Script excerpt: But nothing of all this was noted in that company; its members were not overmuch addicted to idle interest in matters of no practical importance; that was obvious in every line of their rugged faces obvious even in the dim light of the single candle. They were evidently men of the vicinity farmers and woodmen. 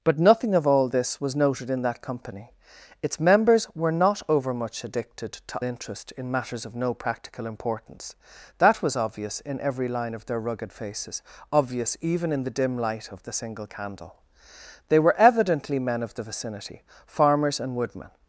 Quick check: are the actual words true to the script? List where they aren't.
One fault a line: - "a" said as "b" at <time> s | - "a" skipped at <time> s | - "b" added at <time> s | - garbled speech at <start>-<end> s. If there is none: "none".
- "idle" skipped at 5.6 s